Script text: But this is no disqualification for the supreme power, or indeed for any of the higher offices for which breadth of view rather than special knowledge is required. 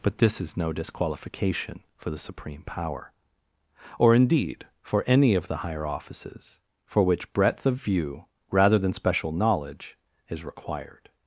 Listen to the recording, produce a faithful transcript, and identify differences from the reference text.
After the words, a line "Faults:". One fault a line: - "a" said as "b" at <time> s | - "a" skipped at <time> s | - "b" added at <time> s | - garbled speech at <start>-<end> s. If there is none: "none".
But this is no disqualification for the supreme power, or indeed for any of the higher offices for which breadth of view rather than special knowledge is required.
Faults:
none